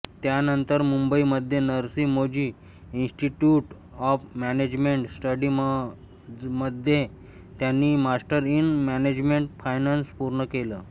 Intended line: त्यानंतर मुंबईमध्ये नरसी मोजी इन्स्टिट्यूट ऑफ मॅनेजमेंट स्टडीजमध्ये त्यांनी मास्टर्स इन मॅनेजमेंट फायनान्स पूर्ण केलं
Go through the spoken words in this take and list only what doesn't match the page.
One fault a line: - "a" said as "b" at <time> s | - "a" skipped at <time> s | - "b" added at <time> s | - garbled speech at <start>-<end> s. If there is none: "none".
none